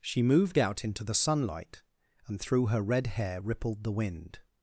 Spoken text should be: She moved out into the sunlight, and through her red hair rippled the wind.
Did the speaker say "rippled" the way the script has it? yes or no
yes